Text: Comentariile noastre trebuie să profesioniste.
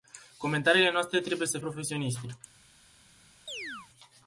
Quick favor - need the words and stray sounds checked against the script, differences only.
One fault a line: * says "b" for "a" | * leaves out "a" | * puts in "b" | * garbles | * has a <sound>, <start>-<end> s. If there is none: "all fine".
* has a chirp, 3.5-3.9 s